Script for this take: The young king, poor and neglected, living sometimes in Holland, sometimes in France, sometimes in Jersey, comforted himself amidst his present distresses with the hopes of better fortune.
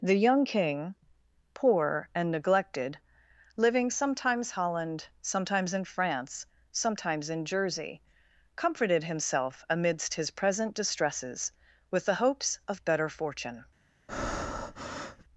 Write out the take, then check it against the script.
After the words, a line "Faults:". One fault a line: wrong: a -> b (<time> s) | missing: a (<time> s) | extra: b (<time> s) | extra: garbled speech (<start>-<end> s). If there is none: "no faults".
The young king, poor and neglected, living sometimes Holland, sometimes in France, sometimes in Jersey, comforted himself amidst his present distresses with the hopes of better fortune.
Faults:
missing: in (4.5 s)